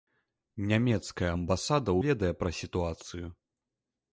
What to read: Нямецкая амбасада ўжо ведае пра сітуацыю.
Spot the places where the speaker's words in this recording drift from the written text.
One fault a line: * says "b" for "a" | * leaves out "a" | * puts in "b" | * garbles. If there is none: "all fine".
* leaves out "ўжо"